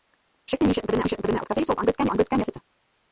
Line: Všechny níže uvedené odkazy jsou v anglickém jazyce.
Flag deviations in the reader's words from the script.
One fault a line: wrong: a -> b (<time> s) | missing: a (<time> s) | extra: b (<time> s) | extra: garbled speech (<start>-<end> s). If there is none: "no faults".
extra: níže uvedené (1.0 s)
extra: anglickém (2.1 s)